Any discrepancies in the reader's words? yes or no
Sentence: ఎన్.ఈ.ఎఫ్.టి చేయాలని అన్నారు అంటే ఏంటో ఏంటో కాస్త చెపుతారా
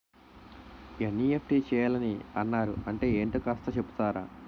yes